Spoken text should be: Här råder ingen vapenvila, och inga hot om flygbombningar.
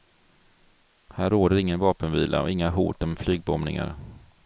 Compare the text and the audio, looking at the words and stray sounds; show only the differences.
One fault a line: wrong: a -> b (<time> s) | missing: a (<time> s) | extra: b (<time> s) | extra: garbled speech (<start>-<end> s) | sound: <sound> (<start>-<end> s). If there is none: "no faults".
no faults